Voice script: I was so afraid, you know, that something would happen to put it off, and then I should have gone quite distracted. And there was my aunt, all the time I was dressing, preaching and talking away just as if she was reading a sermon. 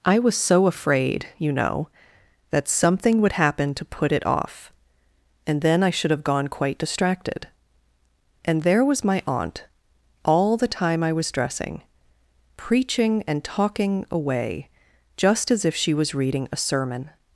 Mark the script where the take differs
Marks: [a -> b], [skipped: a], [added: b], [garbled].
I was so afraid, you know, that something would happen to put it off, and then I should have gone quite distracted. And there was my aunt, all the time I was dressing, preaching and talking away just as if she was reading a sermon.